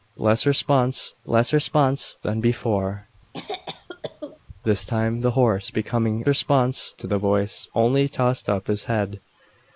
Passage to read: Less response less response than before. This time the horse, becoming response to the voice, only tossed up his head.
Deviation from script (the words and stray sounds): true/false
true